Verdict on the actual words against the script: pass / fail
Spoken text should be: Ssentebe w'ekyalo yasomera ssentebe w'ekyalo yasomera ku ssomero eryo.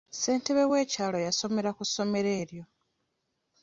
fail